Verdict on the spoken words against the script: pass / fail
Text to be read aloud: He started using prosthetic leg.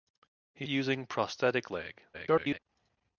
fail